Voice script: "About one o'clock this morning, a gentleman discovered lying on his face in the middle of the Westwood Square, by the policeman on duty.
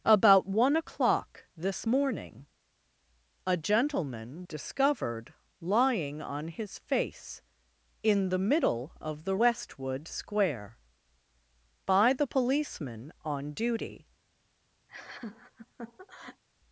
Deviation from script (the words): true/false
false